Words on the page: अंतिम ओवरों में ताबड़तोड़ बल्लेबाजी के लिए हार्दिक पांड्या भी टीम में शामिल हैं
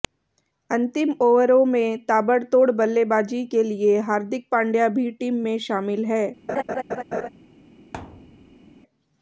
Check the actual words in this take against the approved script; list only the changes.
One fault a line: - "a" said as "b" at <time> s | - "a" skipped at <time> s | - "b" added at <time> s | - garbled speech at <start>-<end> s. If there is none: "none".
none